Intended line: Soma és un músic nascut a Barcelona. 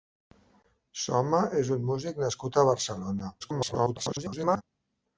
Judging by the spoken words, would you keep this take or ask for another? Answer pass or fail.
fail